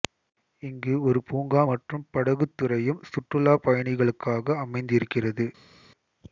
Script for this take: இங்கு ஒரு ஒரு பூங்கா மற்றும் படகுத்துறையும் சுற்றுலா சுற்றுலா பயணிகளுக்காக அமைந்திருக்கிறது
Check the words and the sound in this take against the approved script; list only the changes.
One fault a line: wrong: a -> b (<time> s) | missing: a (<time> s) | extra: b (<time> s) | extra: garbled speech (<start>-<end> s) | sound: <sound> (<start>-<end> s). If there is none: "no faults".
missing: ஒரு (1.2 s)
missing: சுற்றுலா (3.5 s)